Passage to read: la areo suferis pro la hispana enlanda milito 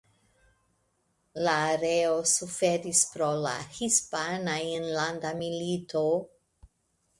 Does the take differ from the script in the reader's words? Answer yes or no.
no